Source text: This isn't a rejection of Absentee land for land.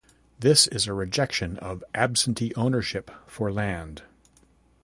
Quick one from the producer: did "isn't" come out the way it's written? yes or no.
no